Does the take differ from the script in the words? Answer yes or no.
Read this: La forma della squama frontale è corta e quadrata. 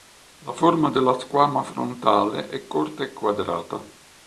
no